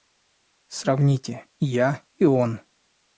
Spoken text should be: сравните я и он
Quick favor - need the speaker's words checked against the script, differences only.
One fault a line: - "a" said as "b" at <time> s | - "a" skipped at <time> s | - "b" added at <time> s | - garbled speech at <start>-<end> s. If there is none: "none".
none